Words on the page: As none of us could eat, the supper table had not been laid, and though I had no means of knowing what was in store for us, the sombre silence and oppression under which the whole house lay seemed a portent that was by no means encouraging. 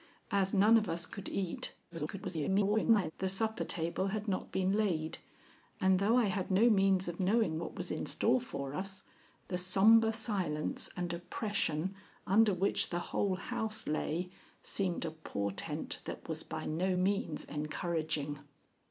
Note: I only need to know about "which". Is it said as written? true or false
true